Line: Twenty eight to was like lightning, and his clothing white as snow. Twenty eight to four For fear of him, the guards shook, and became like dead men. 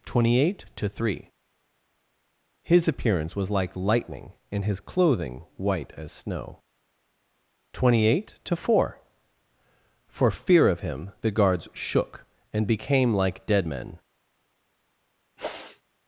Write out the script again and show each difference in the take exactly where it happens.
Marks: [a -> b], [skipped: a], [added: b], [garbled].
Twenty eight to [added: three His appearance] was like lightning, and his clothing white as snow. Twenty eight to four For fear of him, the guards shook, and became like dead men.